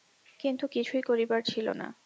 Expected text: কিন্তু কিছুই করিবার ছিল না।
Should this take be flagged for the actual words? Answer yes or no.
no